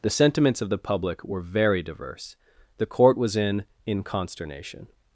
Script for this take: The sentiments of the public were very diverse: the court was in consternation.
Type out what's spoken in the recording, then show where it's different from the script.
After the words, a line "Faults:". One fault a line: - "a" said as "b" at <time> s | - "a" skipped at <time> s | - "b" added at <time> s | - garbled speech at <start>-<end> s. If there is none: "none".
The sentiments of the public were very diverse: the court was in in consternation.
Faults:
- "in" added at 3.9 s